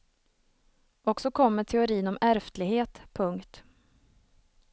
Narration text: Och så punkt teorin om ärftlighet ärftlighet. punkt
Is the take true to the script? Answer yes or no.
no